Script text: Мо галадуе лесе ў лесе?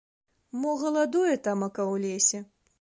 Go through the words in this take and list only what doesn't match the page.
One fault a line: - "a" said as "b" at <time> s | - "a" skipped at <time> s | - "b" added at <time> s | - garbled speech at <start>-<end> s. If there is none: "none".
- "лесе" said as "тамака" at 1.5 s